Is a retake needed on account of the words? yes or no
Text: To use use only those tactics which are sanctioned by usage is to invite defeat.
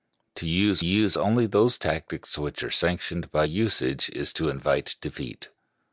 no